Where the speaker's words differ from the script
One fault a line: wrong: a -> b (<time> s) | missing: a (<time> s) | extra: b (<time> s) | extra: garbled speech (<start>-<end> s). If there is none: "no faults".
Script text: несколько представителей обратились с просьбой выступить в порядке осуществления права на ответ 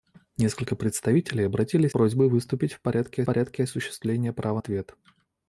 missing: с (1.9 s)
extra: порядке (3.2 s)
missing: на (4.6 s)